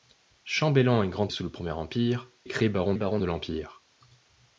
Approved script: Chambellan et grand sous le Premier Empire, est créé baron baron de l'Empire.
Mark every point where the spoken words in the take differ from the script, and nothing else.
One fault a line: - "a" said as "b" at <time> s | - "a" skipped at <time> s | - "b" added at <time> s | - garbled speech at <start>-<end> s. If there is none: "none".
none